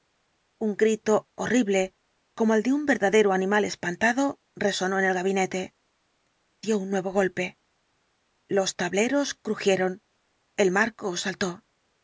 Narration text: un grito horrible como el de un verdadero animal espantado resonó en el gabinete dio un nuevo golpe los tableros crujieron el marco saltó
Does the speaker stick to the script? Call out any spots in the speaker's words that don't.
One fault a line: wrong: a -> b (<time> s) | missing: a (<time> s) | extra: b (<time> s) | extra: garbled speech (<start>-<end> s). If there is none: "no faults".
no faults